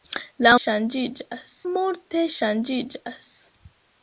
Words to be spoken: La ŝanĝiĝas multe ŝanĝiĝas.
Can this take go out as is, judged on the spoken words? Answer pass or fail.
pass